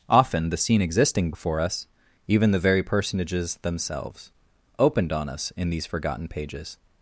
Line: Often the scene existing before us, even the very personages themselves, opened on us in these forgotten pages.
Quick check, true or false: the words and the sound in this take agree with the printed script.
true